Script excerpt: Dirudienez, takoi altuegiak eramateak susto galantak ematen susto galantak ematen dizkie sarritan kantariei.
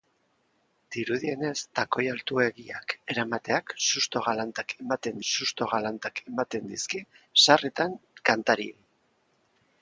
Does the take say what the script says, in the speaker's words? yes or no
yes